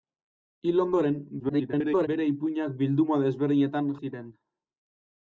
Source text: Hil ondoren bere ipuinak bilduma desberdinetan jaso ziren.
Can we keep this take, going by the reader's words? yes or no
no